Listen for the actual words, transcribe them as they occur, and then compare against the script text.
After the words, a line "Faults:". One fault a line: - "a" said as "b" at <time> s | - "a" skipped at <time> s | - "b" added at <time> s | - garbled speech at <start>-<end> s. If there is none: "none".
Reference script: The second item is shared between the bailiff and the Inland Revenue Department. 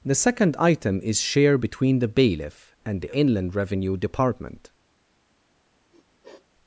The second item is share between the bailiff and the Inland Revenue Department.
Faults:
- "shared" said as "share" at 1.2 s